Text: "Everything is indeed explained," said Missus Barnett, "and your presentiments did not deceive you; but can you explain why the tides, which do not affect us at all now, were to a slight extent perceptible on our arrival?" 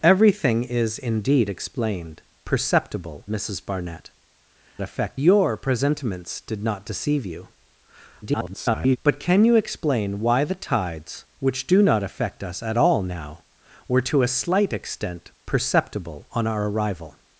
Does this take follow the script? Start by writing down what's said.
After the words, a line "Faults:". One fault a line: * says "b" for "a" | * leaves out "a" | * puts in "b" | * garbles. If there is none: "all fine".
"Everything is indeed explained," perceptible Missus Barnett, "affect your presentiments did not deceive you; [garbled] but can you explain why the tides, which do not affect us at all now, were to a slight extent perceptible on our arrival?"
Faults:
* says "perceptible" for "said"
* says "affect" for "and"
* garbles